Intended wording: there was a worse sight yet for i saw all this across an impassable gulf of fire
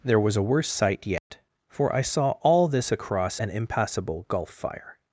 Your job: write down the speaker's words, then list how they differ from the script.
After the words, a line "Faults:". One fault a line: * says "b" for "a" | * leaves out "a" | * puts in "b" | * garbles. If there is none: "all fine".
there was a worse sight yet for i saw all this across an impassable gulf fire
Faults:
* leaves out "of"